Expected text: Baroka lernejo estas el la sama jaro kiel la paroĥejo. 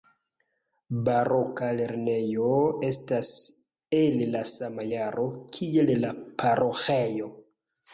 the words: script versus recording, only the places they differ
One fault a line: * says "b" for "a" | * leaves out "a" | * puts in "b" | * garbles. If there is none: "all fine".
all fine